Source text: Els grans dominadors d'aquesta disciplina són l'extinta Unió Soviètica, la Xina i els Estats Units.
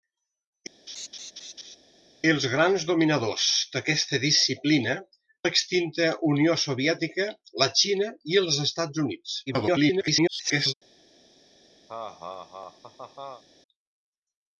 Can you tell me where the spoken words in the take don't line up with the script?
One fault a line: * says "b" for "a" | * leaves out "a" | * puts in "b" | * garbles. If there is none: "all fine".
* leaves out "són"
* garbles